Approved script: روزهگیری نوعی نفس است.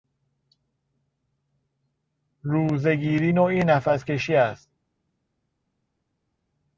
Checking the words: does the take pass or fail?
fail